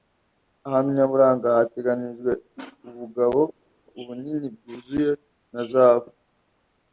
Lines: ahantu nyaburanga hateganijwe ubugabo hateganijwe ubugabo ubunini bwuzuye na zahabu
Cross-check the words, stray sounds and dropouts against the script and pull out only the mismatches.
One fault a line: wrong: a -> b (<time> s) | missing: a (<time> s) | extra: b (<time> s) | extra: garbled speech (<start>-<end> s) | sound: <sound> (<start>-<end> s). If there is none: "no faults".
missing: hateganijwe ubugabo (3.4 s)